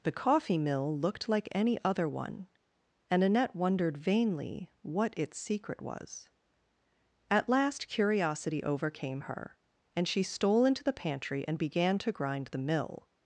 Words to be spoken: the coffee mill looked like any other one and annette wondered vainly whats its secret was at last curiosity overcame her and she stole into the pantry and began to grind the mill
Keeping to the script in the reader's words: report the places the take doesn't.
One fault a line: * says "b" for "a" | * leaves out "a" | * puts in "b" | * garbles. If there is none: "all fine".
* says "what" for "whats"